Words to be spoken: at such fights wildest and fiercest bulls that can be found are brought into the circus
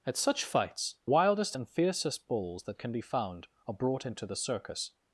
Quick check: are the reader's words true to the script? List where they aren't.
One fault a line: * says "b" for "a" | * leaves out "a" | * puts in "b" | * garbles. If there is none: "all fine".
all fine